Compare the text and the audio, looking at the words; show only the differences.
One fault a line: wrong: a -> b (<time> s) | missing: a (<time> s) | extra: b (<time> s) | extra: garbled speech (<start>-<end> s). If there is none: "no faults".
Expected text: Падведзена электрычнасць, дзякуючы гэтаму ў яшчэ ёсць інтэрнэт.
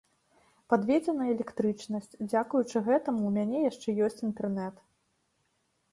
extra: мяне (3.4 s)